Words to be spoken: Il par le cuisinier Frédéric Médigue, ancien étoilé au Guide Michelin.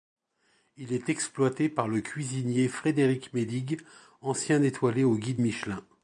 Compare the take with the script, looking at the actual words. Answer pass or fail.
fail